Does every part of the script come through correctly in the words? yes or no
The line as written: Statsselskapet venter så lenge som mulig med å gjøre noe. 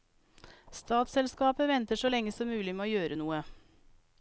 yes